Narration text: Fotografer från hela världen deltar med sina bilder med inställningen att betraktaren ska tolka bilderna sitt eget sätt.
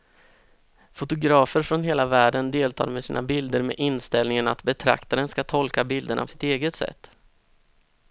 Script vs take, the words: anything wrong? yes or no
no